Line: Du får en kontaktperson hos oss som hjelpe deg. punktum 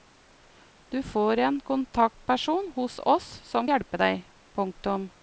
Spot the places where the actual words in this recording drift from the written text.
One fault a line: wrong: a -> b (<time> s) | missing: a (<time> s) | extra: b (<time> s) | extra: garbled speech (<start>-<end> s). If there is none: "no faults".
no faults